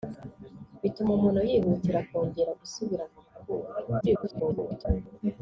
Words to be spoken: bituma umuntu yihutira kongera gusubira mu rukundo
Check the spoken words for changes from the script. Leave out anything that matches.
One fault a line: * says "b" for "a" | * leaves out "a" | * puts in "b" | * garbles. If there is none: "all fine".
* garbles